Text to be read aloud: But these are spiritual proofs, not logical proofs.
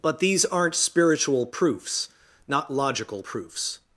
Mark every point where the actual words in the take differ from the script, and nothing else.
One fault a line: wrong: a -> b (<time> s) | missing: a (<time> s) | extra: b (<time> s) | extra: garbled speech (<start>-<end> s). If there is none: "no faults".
wrong: are -> aren't (0.5 s)